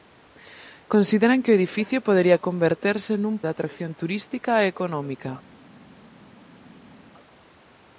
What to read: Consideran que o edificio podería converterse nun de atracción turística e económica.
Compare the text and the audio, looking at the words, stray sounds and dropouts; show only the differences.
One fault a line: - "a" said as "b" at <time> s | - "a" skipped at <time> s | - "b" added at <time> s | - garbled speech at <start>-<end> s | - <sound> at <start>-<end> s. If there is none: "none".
none